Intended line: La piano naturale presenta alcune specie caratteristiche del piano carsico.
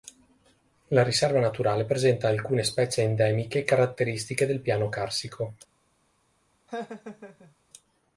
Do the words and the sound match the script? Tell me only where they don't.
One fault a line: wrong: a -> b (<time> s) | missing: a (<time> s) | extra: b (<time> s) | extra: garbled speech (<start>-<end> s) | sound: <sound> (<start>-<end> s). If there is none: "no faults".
wrong: piano -> riserva (1.0 s)
extra: endemiche (3.0 s)
sound: laugh (6.7-7.5 s)